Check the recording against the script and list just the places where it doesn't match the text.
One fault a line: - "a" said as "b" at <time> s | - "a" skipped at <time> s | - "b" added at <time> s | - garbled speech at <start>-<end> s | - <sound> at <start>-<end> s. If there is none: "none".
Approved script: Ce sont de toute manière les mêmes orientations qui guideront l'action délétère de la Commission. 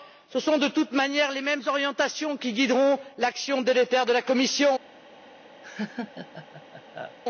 - laugh at 5.6-7.2 s